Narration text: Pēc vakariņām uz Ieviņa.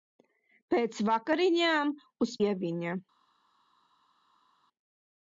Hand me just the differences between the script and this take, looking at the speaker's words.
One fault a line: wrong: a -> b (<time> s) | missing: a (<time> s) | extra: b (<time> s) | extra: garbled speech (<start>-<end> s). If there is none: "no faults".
no faults